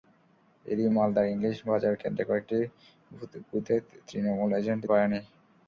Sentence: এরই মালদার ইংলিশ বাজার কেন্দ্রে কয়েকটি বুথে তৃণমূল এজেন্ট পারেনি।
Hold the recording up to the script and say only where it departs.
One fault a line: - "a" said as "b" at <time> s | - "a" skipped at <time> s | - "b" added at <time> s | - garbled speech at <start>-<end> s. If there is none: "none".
none